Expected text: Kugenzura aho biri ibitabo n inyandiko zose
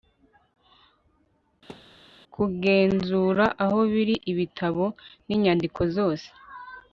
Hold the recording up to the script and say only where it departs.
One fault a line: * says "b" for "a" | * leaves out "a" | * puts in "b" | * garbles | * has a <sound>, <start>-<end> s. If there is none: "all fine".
* has a thud, 1.7-2.0 s